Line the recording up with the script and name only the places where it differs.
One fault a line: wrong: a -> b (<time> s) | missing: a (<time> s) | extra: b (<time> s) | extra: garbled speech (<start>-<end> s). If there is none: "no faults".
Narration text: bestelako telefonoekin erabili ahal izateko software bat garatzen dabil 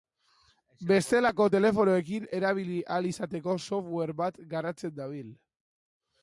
no faults